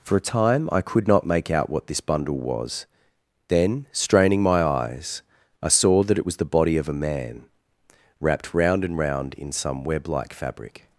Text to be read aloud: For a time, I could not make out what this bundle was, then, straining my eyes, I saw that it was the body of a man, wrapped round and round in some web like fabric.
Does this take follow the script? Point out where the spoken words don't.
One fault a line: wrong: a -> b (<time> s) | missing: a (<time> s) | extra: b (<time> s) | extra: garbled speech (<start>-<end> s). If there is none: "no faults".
no faults